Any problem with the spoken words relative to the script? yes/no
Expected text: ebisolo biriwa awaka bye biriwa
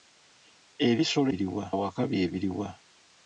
no